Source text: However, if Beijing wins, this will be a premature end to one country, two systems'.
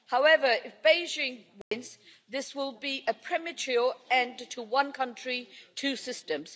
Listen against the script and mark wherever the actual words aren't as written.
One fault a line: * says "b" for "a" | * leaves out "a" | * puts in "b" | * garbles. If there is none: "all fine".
all fine